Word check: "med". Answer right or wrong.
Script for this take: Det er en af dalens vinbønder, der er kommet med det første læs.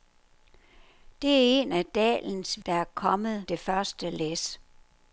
wrong